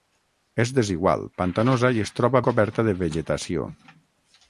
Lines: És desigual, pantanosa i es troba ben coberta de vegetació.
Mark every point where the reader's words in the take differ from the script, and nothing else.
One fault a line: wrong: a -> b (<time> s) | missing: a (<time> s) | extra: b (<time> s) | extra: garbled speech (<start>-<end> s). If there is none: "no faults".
missing: ben (2.4 s)